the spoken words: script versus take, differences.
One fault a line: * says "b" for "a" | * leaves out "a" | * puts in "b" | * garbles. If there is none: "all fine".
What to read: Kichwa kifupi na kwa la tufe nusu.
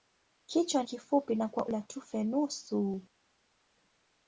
all fine